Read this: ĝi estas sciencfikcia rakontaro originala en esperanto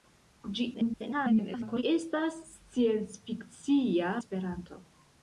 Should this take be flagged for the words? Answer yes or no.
yes